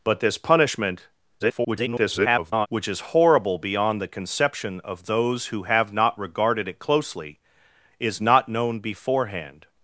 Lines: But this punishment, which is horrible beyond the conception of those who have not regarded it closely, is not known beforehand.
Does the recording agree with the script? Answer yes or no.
no